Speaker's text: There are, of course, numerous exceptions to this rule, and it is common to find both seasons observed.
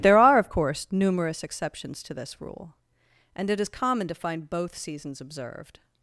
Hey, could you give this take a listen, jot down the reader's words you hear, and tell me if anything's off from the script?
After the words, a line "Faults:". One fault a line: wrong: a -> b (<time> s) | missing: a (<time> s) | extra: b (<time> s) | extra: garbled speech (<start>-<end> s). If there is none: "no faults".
There are, of course, numerous exceptions to this rule, and it is common to find both seasons observed.
Faults:
no faults